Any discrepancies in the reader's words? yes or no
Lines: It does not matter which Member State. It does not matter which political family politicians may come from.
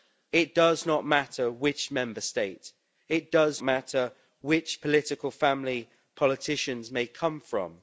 yes